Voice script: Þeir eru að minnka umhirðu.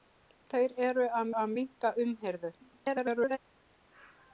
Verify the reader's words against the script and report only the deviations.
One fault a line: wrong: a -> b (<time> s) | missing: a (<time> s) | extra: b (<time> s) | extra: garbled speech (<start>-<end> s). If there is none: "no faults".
extra: að (1.4 s)
extra: garbled speech (2.6-3.4 s)